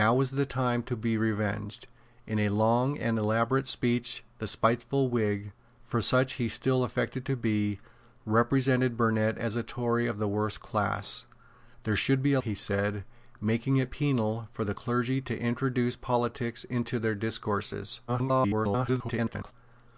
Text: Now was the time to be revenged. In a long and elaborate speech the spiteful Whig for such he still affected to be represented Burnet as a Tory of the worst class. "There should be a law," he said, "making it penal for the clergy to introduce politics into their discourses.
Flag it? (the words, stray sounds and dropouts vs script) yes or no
yes